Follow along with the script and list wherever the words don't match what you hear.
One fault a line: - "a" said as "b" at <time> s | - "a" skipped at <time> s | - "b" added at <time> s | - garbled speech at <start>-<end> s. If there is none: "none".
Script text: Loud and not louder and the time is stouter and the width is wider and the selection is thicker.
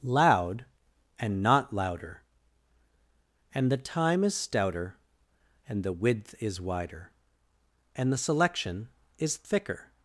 none